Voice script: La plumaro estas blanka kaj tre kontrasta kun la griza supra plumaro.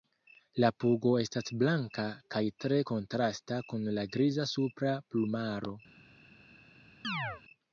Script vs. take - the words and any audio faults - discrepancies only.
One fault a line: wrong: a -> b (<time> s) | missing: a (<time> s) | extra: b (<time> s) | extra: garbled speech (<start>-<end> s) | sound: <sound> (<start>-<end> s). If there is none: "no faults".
wrong: plumaro -> pugo (0.8 s)
sound: chirp (7.0-7.4 s)